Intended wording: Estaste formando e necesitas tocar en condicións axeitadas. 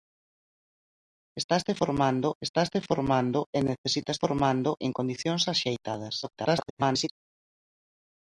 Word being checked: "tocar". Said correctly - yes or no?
no